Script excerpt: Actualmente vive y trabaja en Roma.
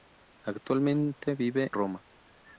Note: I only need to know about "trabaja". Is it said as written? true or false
false